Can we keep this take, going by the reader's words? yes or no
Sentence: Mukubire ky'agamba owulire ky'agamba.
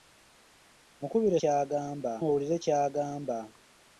yes